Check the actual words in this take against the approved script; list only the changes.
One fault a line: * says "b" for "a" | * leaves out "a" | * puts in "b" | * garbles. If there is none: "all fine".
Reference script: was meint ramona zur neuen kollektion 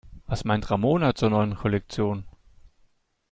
all fine